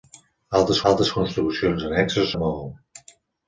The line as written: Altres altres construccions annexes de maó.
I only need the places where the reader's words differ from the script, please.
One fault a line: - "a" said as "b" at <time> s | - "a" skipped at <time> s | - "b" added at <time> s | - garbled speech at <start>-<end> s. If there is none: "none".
none